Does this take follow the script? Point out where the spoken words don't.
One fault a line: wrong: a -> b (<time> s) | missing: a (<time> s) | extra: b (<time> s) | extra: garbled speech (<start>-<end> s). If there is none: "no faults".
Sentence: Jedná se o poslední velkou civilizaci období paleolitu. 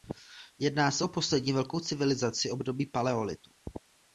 no faults